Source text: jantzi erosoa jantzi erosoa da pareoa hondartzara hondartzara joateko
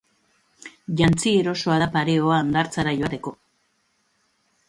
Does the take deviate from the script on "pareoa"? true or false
false